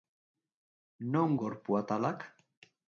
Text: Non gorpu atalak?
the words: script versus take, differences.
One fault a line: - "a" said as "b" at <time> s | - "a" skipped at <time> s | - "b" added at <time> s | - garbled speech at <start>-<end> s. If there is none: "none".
none